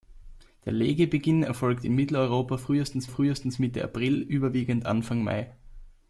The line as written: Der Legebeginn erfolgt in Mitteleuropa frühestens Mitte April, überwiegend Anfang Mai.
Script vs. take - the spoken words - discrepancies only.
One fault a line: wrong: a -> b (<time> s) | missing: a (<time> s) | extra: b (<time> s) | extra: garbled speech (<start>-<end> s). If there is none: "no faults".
extra: frühestens (3.1 s)